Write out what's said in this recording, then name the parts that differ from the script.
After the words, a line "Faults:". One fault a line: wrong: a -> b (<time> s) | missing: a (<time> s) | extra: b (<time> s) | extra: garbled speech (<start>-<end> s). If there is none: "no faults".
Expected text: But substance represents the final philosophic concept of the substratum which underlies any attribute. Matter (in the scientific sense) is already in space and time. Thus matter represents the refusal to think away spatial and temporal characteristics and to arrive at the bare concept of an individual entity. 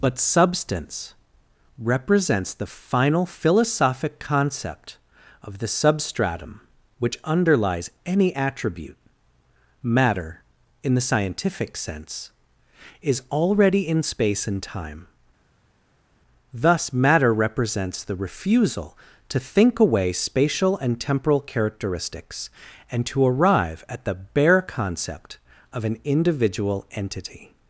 But substance represents the final philosophic concept of the substratum which underlies any attribute. Matter (in the scientific sense) is already in space and time. Thus matter represents the refusal to think away spatial and temporal characteristics and to arrive at the bare concept of an individual entity.
Faults:
no faults